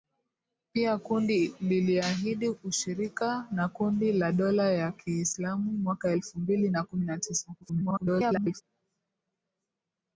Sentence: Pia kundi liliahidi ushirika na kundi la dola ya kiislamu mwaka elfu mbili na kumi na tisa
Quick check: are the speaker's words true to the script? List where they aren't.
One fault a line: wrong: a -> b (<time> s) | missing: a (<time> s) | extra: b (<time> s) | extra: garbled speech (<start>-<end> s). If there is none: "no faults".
extra: garbled speech (7.6-8.6 s)